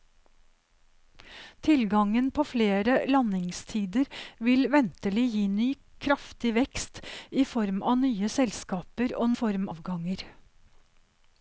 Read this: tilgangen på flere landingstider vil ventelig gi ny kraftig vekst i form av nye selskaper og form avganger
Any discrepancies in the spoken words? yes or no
no